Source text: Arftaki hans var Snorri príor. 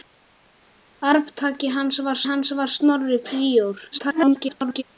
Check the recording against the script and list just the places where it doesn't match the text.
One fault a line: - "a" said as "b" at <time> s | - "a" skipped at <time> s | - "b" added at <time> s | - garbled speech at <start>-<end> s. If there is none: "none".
- "hans var" added at 2.3 s
- garbled speech at 3.9-4.8 s